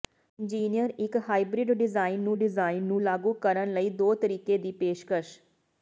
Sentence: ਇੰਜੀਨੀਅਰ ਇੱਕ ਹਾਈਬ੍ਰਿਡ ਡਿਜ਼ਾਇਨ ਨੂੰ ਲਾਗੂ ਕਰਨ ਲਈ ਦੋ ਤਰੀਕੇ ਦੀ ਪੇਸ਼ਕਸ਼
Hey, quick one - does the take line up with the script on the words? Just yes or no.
no